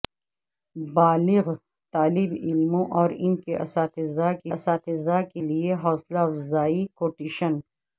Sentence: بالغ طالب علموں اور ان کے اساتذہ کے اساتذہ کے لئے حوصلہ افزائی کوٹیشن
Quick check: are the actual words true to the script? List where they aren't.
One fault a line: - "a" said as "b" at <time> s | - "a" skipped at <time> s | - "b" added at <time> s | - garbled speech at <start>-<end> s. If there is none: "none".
none